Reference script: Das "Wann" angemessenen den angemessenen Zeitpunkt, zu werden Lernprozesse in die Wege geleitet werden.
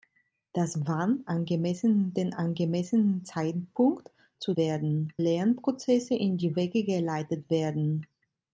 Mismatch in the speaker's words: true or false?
false